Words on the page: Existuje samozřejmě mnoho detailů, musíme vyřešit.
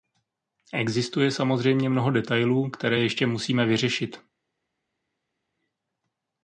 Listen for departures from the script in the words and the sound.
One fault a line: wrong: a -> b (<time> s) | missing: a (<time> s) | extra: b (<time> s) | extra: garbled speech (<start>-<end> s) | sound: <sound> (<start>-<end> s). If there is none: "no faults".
extra: které ještě (2.7 s)